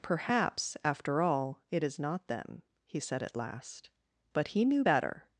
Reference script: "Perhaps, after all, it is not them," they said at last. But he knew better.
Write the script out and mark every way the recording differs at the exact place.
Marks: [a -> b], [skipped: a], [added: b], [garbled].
"Perhaps, after all, it is not them," [they -> he] said at last. But he knew better.